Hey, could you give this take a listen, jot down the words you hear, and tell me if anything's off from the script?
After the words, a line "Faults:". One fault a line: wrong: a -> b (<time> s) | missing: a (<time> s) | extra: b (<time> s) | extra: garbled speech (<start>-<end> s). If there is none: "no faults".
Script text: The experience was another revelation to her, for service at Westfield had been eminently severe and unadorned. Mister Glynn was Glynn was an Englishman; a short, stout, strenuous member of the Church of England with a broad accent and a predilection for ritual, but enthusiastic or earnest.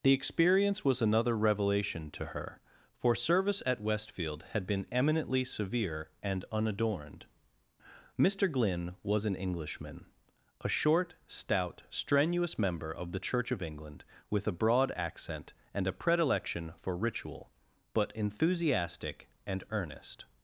The experience was another revelation to her, for service at Westfield had been eminently severe and unadorned. Mister Glynn was an Englishman; a short, stout, strenuous member of the Church of England with a broad accent and a predilection for ritual, but enthusiastic and earnest.
Faults:
missing: Glynn was (9.3 s)
wrong: or -> and (19.5 s)